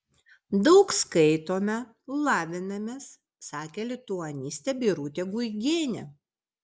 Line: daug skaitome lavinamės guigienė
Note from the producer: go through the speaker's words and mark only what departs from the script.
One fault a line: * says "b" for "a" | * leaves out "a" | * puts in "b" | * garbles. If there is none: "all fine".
* puts in "sakė lituanistė birutė"